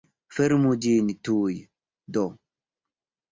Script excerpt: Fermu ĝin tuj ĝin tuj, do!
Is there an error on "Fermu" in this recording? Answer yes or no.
no